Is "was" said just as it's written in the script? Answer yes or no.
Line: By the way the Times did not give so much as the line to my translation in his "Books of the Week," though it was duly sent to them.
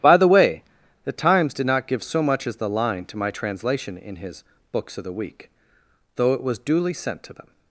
yes